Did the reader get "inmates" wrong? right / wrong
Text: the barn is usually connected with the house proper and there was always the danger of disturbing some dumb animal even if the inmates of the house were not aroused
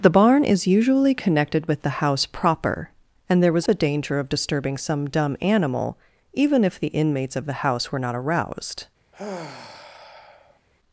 right